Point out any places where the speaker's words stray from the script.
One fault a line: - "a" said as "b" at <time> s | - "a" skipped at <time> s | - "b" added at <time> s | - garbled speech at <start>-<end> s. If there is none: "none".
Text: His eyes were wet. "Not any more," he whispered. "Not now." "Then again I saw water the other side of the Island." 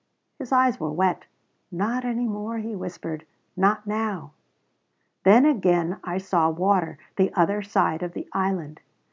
none